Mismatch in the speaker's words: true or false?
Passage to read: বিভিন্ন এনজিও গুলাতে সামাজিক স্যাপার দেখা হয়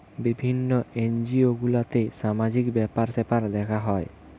true